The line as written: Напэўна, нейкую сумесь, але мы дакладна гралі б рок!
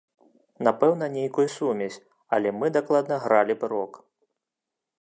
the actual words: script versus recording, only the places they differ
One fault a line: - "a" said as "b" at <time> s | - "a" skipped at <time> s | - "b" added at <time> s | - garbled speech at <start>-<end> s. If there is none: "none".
none